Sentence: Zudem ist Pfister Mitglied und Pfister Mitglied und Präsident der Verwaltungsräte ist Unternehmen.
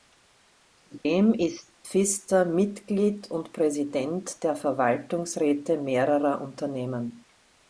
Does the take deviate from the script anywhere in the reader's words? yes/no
yes